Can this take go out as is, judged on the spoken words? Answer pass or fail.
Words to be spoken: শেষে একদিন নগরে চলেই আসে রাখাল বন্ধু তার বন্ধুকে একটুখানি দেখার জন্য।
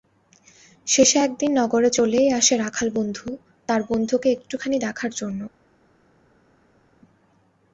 pass